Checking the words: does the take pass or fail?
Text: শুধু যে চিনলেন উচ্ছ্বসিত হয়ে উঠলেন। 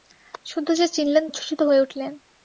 pass